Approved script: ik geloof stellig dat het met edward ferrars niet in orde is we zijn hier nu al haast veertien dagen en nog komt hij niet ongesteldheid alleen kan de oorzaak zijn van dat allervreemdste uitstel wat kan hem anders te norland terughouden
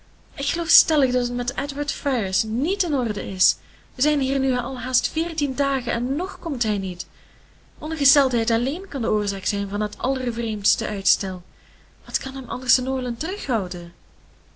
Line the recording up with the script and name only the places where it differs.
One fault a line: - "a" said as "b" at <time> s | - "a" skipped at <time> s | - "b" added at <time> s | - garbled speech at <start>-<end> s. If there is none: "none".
none